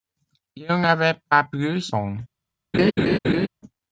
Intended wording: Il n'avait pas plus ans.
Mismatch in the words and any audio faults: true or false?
true